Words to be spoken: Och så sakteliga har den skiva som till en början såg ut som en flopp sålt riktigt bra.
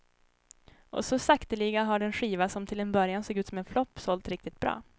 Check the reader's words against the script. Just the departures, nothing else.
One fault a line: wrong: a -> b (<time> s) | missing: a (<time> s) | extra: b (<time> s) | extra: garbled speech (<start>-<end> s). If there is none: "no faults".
no faults